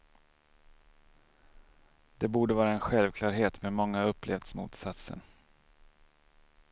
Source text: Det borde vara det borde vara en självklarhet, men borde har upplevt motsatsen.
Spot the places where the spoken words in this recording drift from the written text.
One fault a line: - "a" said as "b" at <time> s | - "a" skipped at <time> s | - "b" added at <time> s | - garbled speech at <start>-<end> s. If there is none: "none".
- "det borde vara" skipped at 2.7 s
- "borde" said as "många" at 3.7 s